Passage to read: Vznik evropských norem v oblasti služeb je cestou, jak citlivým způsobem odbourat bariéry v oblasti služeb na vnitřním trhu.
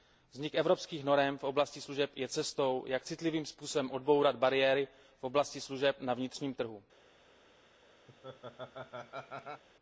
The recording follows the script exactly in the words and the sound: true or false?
false